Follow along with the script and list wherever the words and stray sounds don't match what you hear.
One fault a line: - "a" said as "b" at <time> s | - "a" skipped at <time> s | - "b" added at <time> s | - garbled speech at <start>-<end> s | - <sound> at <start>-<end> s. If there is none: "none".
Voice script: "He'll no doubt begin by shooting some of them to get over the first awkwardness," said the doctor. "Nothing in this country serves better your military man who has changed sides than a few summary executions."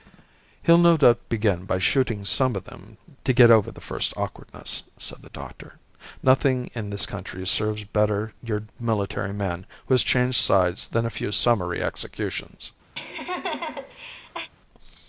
- laugh at 13.0-14.5 s